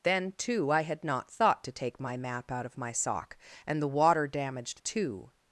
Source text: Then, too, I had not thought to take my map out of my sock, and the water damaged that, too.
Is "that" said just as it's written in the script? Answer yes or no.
no